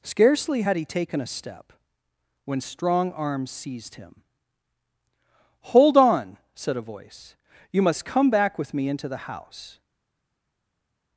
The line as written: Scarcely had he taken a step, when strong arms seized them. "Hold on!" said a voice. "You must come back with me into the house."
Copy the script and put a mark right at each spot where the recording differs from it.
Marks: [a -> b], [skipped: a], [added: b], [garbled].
Scarcely had he taken a step, when strong arms seized [them. -> him] "Hold on!" said a voice. "You must come back with me into the house."